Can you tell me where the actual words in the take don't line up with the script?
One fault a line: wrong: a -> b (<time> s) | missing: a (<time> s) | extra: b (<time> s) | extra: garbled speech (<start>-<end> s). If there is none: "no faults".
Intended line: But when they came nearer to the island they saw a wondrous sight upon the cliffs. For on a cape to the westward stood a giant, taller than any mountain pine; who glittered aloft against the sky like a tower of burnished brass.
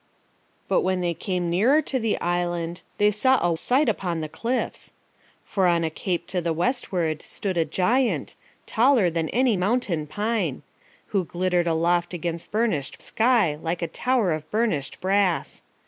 missing: wondrous (3.5 s)
wrong: the -> burnished (12.5 s)